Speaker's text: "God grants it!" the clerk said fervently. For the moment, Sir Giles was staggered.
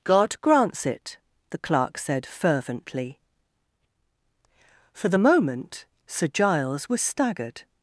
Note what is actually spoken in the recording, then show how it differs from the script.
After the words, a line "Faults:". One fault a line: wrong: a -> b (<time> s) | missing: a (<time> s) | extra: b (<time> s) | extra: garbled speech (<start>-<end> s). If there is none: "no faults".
"God grants it!" the clerk said fervently. For the moment, Sir Giles was staggered.
Faults:
no faults